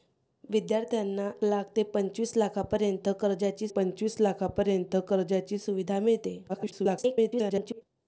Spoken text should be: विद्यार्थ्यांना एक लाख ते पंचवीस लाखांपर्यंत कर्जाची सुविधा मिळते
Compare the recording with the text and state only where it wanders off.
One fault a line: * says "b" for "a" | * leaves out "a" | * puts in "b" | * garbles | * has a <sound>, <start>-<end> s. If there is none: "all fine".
* leaves out "एक"
* puts in "पंचवीस लाखांपर्यंत कर्जाची"
* garbles